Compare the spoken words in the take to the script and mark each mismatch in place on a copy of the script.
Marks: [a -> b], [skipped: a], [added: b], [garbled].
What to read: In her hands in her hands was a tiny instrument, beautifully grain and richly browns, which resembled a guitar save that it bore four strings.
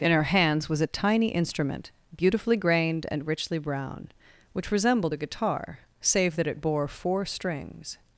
In her hands [skipped: in her hands] was a tiny instrument, beautifully [grain -> grained] and richly [browns, -> brown] which resembled a guitar save that it bore four strings.